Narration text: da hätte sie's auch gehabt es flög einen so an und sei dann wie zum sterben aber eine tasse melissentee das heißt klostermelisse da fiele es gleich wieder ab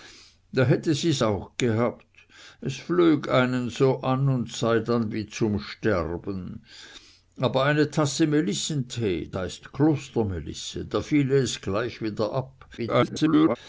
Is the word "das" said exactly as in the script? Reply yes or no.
no